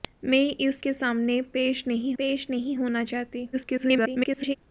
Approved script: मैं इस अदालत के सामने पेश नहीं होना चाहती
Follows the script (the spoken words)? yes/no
no